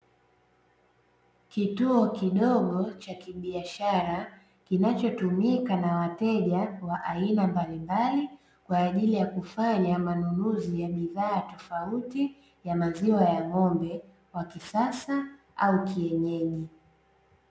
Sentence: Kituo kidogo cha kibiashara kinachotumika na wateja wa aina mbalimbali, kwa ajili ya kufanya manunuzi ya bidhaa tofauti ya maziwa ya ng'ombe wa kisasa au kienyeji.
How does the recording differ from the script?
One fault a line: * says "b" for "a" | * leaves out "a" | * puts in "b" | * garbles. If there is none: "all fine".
all fine